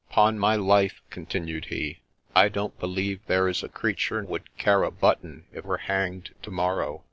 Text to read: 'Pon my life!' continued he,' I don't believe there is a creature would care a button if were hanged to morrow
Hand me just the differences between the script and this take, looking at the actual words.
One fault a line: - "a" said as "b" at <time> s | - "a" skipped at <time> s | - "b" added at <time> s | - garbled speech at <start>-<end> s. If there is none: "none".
none